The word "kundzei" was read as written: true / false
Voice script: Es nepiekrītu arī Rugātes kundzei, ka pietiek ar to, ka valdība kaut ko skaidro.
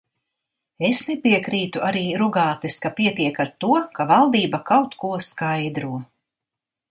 false